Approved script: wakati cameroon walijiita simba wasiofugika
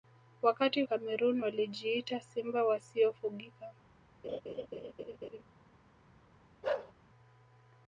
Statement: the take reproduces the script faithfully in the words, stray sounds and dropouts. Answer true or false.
false